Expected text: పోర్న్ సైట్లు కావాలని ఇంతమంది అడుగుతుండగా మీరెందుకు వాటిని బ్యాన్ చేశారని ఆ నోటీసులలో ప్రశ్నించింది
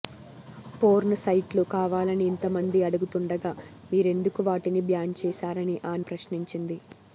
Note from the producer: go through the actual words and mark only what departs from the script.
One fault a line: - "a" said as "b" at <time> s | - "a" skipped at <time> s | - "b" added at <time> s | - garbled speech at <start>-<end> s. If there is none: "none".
- "నోటీసులలో" skipped at 6.1 s